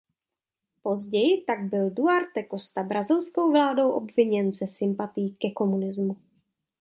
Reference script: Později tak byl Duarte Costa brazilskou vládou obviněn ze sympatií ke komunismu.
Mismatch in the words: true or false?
false